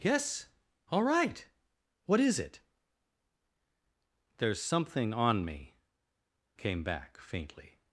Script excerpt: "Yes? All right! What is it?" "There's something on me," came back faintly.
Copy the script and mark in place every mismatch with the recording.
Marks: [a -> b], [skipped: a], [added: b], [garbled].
"Yes? All right! What is it?" "There's something on me," came back faintly.